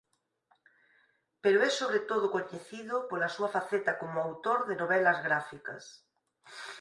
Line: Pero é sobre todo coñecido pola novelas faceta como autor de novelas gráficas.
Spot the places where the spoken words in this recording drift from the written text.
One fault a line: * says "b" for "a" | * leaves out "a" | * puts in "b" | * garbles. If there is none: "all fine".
* says "súa" for "novelas"